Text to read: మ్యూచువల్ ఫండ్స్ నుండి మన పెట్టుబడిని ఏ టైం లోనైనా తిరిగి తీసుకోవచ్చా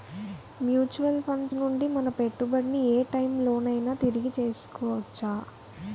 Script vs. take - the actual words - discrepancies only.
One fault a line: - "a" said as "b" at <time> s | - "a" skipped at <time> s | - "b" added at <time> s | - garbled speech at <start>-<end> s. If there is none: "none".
none